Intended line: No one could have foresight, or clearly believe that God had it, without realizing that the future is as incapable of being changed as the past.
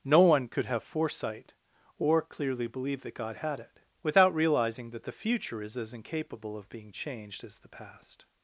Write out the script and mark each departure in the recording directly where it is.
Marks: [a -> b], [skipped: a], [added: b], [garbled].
No one could have foresight, or clearly believe that God had it, without realizing that the future is as incapable of being changed as the past.